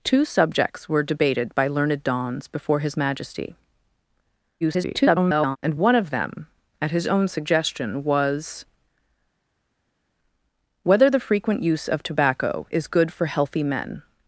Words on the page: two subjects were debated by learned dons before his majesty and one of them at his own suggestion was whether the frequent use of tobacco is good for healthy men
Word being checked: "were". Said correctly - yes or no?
yes